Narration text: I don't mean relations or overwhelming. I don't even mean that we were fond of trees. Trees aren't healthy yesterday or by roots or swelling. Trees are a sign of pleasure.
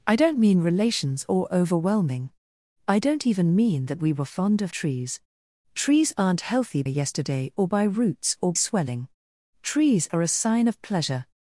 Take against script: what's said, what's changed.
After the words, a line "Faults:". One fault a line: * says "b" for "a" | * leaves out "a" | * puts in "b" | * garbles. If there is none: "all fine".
I don't mean relations or overwhelming. I don't even mean that we were fond of trees. Trees aren't healthy yesterday or by roots or swelling. Trees are a sign of pleasure.
Faults:
all fine